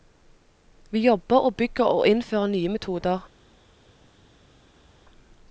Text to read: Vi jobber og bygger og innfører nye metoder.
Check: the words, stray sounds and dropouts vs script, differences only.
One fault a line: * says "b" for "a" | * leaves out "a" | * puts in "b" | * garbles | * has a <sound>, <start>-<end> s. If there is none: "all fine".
all fine